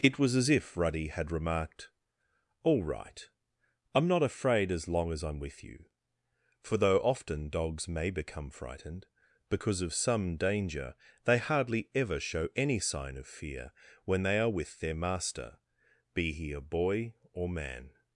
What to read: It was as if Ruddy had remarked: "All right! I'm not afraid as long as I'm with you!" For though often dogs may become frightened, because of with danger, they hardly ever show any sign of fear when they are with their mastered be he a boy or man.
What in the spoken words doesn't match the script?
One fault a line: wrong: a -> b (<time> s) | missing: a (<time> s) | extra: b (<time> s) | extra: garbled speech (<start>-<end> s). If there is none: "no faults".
wrong: with -> some (9.9 s)
wrong: mastered -> master (14.9 s)